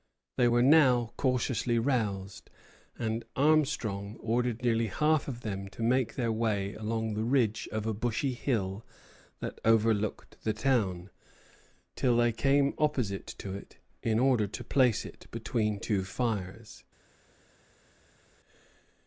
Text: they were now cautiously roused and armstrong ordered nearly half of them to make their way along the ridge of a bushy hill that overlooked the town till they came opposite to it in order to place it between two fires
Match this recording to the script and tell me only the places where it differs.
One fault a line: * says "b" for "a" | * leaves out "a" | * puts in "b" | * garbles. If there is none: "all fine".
all fine